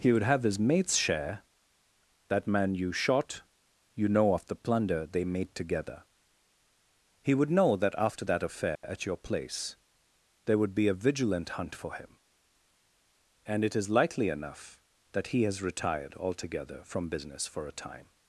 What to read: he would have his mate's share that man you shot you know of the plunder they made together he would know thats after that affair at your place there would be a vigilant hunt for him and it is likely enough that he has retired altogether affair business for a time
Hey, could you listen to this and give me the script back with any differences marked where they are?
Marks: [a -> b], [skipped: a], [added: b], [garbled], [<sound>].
he would have his mate's share that man you shot you know of the plunder they made together he would know [thats -> that] after that affair [dropout] at your place there would be a vigilant hunt for him and it is likely enough that he has retired altogether [affair -> from] business for a time